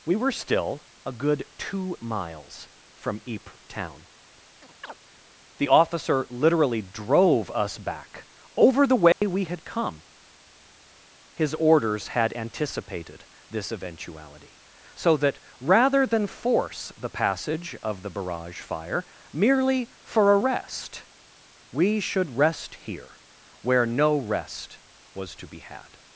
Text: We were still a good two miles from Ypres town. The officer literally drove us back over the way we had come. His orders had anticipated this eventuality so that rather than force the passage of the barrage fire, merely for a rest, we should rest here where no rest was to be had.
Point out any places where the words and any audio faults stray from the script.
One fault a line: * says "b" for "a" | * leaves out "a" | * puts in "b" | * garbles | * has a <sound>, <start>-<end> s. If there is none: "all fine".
* has a chirp, 4.6-4.9 s
* has a dropout, 9.1-9.2 s